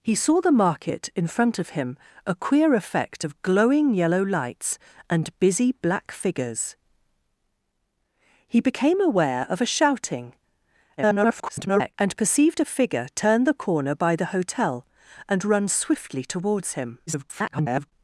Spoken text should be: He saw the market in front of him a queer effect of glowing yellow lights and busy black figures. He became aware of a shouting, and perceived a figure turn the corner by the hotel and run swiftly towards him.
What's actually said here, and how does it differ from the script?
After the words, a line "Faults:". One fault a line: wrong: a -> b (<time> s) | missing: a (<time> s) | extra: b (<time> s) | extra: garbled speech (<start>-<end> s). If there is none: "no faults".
He saw the market in front of him a queer effect of glowing yellow lights and busy black figures. He became aware of a shouting, [garbled] and perceived a figure turn the corner by the hotel and run swiftly towards him. [garbled]
Faults:
extra: garbled speech (11.0-11.9 s)
extra: garbled speech (17.1-17.9 s)